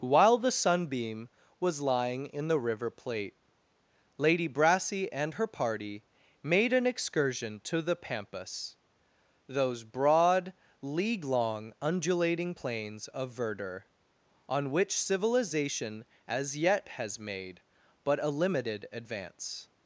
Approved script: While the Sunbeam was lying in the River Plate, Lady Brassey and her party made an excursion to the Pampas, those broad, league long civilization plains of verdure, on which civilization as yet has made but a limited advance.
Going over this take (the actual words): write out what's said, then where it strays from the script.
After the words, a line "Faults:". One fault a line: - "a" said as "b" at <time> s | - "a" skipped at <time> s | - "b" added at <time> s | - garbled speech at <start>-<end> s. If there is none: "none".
While the Sunbeam was lying in the River Plate, Lady Brassey and her party made an excursion to the Pampas, those broad, league long undulating plains of verdure, on which civilization as yet has made but a limited advance.
Faults:
- "civilization" said as "undulating" at 11.8 s